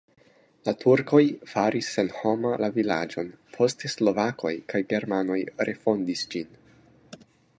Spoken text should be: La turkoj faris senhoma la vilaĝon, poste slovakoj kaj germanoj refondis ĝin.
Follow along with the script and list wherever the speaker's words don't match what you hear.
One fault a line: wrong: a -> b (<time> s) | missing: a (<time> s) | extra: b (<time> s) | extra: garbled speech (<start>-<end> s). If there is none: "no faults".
no faults